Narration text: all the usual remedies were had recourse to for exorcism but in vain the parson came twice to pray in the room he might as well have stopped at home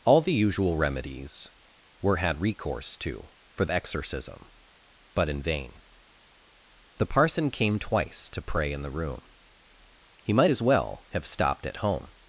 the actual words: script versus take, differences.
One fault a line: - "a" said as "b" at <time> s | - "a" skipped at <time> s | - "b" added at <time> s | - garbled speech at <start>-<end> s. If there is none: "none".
none